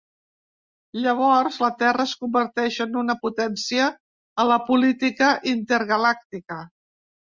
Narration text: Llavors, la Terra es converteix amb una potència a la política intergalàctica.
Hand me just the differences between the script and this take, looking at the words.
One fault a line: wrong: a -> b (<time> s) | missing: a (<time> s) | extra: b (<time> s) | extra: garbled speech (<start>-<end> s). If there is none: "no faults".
wrong: amb -> en (2.9 s)